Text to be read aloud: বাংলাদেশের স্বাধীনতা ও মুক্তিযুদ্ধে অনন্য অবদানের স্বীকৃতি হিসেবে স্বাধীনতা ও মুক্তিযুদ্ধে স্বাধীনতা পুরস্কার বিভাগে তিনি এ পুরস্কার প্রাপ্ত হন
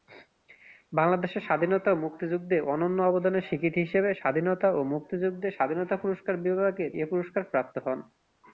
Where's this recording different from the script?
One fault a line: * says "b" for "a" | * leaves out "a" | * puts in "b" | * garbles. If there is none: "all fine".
* leaves out "তিনি"